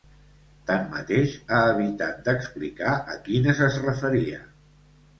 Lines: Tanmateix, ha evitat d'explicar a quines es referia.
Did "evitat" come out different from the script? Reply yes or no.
no